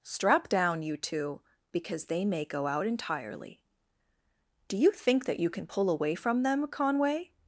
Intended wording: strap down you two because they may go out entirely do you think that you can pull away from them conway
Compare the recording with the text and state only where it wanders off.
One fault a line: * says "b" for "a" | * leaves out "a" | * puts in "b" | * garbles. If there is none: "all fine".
all fine